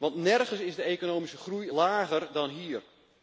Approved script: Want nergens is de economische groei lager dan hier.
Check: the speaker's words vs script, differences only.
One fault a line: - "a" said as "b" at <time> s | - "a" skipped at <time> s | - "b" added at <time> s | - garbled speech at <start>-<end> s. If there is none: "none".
none